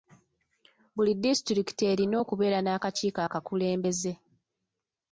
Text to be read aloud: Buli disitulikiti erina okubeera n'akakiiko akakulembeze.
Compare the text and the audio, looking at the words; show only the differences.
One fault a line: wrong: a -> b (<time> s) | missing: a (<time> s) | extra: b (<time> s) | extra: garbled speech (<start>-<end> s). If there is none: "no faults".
no faults